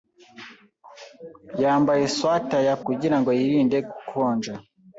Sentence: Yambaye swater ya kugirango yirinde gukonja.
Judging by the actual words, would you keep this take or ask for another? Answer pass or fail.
pass